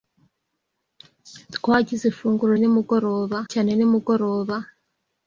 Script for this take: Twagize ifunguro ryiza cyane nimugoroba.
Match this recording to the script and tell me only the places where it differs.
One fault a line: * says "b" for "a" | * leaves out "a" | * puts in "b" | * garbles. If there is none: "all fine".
* says "nimugoroba" for "ryiza"